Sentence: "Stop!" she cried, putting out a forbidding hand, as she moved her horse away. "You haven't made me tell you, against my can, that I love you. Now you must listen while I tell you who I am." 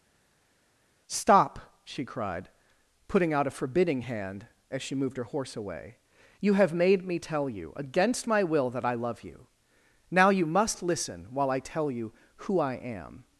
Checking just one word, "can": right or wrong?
wrong